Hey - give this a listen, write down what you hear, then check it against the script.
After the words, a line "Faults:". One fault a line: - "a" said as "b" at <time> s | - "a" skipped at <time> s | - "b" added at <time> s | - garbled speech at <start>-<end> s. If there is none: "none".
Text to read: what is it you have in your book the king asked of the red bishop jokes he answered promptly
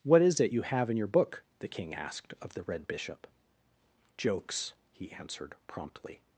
what is it you have in your book the king asked of the red bishop jokes he answered promptly
Faults:
none